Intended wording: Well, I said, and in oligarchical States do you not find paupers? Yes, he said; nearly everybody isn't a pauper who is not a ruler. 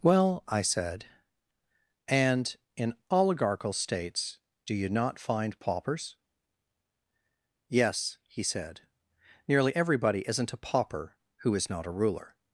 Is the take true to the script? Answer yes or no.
yes